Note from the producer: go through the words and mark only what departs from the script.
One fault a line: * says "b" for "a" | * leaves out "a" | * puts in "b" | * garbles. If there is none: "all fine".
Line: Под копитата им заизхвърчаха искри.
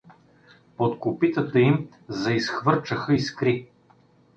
all fine